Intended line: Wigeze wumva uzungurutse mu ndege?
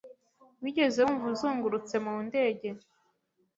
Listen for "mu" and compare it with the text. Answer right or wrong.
right